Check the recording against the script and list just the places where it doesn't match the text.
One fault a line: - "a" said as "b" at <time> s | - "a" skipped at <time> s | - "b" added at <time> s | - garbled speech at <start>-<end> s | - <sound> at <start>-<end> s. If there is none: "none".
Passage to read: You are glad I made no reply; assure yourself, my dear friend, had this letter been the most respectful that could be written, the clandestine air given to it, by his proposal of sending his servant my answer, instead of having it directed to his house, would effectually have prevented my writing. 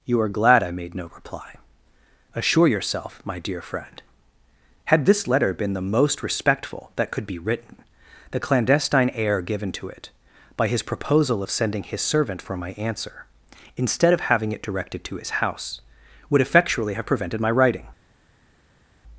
- "for" added at 12.4 s